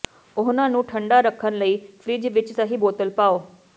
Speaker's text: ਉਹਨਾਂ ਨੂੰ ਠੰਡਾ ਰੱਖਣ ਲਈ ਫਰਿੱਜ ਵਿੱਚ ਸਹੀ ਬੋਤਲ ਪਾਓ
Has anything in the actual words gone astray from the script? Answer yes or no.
no